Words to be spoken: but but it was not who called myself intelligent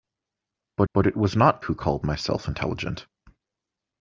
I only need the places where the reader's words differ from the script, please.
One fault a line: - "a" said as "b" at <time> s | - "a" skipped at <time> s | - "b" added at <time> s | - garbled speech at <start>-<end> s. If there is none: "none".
none